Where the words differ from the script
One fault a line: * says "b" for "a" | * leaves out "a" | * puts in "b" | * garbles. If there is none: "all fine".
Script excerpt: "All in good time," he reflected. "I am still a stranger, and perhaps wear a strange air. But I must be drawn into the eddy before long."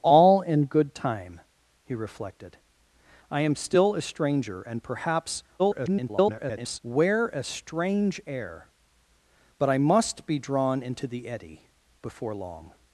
* garbles